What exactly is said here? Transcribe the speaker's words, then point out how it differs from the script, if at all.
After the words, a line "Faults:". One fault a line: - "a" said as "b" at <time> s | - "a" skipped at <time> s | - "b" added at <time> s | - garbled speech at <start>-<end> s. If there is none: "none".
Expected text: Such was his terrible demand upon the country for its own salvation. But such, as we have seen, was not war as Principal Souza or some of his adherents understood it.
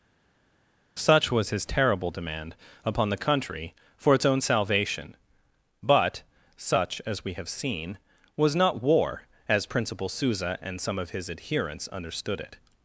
Such was his terrible demand upon the country for its own salvation. But such, as we have seen, was not war as Principal Souza and some of his adherents understood it.
Faults:
- "or" said as "and" at 10.6 s